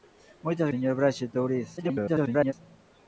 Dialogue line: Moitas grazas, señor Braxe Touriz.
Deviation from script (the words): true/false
true